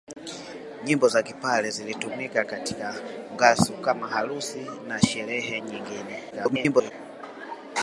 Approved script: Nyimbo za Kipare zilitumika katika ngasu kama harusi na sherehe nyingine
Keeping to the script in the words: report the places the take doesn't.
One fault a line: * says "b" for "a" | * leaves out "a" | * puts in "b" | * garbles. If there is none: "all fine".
* garbles